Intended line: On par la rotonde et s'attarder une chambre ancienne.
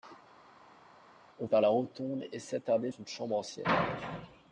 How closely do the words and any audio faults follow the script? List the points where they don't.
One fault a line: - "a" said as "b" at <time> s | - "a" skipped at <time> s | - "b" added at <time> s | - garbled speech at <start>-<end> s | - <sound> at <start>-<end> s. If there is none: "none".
none